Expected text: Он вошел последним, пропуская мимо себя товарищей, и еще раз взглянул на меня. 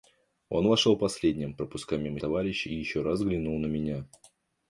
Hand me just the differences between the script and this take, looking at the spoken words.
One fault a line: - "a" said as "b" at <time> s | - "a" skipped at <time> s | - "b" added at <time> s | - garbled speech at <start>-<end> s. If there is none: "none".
- "себя" skipped at 2.2 s